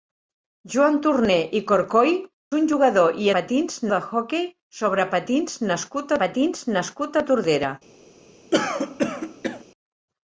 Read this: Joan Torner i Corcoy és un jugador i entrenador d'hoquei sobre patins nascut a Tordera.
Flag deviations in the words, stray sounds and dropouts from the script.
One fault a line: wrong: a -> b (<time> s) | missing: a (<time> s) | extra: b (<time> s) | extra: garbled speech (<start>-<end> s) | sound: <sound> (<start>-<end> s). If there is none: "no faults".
missing: és (2.1 s)
wrong: entrenador -> patins (3.3 s)
extra: patins nascut (6.2 s)
sound: throat clearing (8.5-9.6 s)